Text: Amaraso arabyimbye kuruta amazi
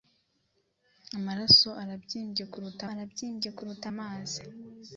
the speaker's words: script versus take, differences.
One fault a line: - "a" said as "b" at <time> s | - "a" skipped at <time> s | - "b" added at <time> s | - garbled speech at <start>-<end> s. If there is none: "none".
- "arabyimbye kuruta" added at 2.9 s